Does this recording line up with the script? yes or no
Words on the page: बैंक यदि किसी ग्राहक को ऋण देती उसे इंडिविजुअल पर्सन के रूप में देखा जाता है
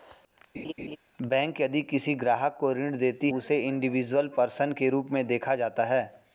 yes